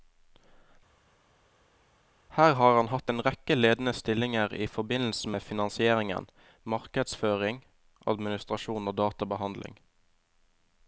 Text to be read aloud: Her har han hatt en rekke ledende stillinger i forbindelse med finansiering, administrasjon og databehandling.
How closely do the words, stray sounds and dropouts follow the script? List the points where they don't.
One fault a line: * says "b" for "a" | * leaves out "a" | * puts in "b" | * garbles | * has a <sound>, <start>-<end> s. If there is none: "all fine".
* puts in "markedsføring"